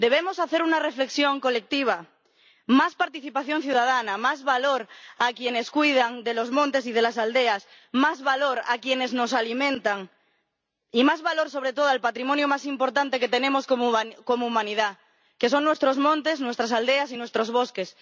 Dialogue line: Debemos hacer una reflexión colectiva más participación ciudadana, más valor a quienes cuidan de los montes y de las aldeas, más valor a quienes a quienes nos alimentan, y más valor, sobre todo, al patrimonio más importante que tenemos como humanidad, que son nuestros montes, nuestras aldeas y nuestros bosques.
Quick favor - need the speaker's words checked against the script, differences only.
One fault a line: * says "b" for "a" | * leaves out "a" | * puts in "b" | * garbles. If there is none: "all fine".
* leaves out "a quienes"